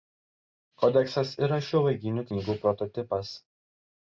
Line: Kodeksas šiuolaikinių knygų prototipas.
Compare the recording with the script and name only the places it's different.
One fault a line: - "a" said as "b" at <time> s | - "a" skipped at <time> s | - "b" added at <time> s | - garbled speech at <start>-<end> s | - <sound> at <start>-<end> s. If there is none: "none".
- "yra" added at 1.5 s